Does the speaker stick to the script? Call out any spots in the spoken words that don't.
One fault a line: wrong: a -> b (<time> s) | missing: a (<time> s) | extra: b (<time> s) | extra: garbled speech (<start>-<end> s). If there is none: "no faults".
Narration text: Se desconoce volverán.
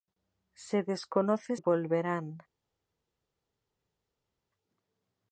no faults